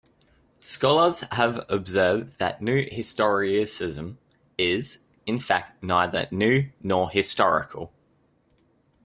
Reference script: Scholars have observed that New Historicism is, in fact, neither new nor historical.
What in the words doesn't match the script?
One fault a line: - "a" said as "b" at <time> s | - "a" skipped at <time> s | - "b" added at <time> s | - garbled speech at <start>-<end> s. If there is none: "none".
none